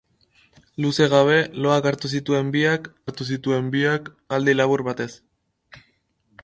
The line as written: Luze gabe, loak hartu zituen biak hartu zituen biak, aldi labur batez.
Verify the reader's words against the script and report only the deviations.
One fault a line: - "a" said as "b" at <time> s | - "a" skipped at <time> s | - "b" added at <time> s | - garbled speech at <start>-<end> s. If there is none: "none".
none